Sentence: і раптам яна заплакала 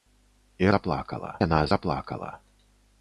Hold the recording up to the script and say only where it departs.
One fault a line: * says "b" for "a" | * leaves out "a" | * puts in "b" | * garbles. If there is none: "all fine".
* says "заплакала" for "раптам"